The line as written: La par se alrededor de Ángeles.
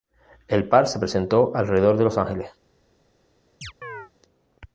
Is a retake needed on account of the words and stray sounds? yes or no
yes